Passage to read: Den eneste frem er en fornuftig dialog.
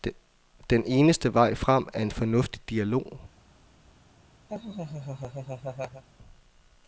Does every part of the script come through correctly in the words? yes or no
no